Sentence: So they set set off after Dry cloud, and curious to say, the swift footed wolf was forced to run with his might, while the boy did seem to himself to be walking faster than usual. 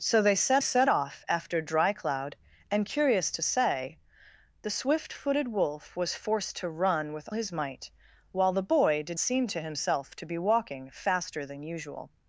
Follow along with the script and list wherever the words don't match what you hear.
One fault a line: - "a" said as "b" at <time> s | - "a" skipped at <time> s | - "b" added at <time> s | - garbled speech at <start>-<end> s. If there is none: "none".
none